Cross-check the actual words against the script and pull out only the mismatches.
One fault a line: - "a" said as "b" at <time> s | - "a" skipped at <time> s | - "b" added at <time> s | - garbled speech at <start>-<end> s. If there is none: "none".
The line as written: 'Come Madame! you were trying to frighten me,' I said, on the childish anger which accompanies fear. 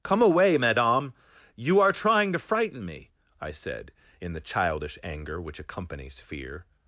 - "away" added at 0.2 s
- "were" said as "are" at 1.8 s
- "on" said as "in" at 4.2 s